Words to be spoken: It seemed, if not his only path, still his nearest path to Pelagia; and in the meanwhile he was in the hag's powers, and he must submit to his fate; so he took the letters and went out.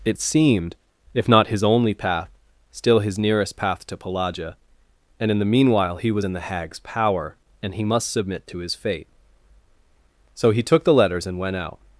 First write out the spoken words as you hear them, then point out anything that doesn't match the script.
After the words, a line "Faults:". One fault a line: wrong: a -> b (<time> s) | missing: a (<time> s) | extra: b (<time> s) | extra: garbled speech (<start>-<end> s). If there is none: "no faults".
It seemed, if not his only path, still his nearest path to Pelagia; and in the meanwhile he was in the hag's power, and he must submit to his fate; so he took the letters and went out.
Faults:
wrong: powers -> power (6.8 s)